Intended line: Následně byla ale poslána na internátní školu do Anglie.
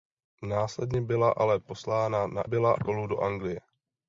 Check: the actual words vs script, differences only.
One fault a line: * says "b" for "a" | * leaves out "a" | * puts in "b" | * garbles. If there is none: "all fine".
* says "byla" for "internátní"